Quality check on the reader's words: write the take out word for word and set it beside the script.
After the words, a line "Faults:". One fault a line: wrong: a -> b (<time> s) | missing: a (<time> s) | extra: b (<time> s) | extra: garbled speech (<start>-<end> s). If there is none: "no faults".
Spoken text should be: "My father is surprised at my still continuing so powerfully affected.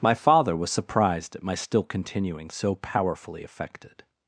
"My father was surprised at my still continuing so powerfully affected.
Faults:
wrong: is -> was (0.5 s)